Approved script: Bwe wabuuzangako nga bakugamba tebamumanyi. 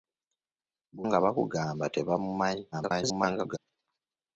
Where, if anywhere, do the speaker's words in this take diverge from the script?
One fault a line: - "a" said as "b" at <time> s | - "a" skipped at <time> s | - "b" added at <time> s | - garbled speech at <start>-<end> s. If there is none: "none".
- "wabuuzangako" skipped at 1.0 s
- garbled speech at 2.7-3.6 s